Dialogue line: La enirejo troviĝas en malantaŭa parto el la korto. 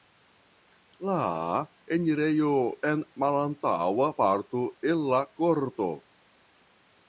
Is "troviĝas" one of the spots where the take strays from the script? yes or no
yes